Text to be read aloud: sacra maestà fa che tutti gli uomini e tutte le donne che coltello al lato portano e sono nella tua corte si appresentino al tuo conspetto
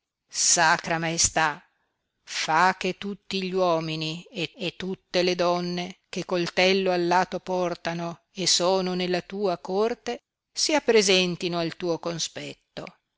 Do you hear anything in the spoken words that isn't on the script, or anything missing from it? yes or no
yes